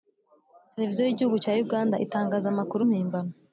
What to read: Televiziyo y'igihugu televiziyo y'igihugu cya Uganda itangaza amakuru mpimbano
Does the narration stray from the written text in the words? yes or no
yes